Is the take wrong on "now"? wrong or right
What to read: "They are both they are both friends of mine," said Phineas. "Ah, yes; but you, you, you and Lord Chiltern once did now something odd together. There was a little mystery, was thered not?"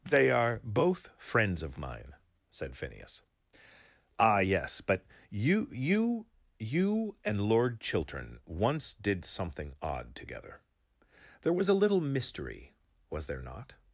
wrong